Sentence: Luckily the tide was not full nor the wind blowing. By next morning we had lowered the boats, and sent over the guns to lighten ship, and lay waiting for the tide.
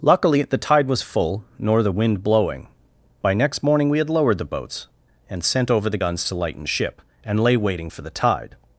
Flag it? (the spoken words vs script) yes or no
yes